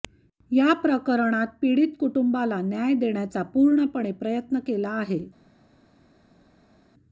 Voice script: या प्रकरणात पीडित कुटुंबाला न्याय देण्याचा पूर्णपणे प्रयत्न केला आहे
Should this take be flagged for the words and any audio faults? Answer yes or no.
no